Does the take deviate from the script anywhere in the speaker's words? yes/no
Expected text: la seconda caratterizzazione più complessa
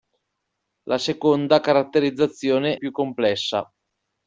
no